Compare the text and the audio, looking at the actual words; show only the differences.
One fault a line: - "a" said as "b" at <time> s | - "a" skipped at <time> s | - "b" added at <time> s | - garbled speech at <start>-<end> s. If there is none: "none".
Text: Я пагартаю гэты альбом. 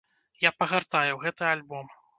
none